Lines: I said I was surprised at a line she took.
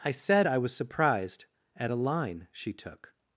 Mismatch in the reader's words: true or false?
false